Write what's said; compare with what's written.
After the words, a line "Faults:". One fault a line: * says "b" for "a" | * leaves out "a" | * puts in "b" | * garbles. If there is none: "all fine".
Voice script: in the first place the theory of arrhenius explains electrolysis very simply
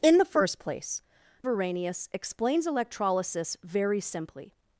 in the first place arrhenius explains electrolysis very simply
Faults:
* leaves out "the theory of"